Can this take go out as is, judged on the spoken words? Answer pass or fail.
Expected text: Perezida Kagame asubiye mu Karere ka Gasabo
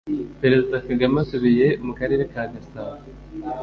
pass